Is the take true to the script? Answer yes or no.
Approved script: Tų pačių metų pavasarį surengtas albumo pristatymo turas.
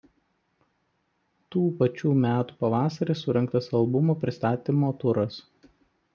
yes